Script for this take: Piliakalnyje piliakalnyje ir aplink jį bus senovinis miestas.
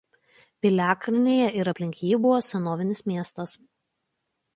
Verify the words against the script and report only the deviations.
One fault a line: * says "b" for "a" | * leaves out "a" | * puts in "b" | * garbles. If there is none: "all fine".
* leaves out "piliakalnyje"
* says "buvo" for "bus"